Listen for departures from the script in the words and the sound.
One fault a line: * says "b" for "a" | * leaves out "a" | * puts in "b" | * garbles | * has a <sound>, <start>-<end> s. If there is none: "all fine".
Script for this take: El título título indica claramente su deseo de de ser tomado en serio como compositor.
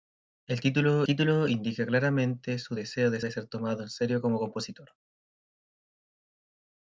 all fine